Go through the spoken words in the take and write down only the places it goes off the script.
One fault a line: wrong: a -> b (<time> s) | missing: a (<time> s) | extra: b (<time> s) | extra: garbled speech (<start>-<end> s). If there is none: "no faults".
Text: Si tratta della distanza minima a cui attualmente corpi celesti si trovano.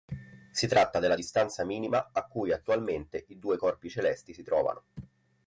extra: i due (3.3 s)